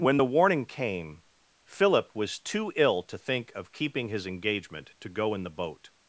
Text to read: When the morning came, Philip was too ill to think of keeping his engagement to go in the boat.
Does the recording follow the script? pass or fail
fail